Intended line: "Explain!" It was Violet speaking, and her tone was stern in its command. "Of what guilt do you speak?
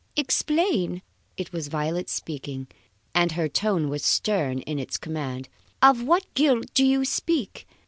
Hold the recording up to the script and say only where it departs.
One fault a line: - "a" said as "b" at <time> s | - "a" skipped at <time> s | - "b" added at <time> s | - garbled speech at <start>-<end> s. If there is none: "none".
none